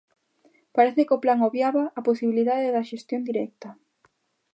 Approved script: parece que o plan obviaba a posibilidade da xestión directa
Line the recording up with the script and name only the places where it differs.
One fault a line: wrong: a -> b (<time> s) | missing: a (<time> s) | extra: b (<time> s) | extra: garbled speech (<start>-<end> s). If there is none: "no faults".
no faults